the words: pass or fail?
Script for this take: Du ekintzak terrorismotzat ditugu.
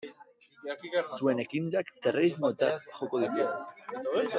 fail